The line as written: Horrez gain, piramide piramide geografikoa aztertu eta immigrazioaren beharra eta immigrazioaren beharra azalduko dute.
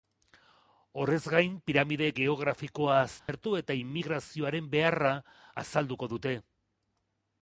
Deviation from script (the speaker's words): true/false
true